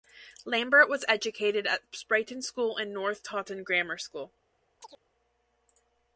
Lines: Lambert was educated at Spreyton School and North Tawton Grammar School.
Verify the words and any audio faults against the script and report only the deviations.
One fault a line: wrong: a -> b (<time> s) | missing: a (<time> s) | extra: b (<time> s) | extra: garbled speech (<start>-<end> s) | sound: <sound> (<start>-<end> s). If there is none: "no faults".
sound: chirp (4.8-5.0 s)